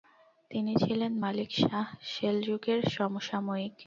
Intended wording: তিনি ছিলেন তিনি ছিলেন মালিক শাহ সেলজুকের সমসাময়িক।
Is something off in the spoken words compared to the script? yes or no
yes